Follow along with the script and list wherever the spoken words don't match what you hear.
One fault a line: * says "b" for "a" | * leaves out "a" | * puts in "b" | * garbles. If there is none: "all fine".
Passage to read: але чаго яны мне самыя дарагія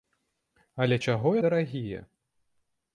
* leaves out "яны мне самыя"